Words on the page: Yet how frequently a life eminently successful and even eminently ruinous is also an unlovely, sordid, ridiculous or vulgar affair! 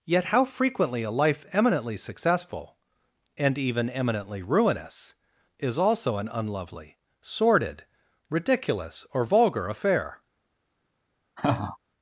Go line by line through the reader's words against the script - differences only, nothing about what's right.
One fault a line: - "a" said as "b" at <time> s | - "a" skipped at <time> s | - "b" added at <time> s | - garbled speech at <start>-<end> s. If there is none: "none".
none